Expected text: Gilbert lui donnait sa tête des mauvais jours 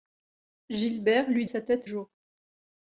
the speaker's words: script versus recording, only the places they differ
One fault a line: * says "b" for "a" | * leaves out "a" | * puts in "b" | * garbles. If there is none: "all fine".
* leaves out "donnait"
* leaves out "des mauvais"